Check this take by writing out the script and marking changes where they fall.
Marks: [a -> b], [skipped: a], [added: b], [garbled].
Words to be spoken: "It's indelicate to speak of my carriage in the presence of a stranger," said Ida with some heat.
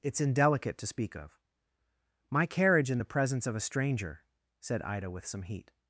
"It's indelicate to speak of my carriage in the presence of a stranger," said Ida with some heat.